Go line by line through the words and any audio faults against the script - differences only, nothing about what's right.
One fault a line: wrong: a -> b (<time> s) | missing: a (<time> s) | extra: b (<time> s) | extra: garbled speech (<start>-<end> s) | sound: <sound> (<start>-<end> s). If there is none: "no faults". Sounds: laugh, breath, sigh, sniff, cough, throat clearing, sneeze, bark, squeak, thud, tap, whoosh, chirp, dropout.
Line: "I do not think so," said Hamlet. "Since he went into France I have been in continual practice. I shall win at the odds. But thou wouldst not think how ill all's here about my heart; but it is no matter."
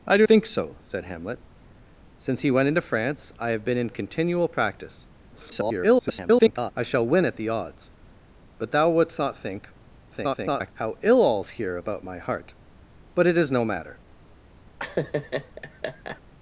missing: not (0.2 s)
extra: garbled speech (5.3-6.7 s)
extra: garbled speech (10.1-10.7 s)
sound: laugh (14.8-16.2 s)